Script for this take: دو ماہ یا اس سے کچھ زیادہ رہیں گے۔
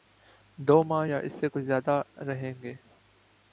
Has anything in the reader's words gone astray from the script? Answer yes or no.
no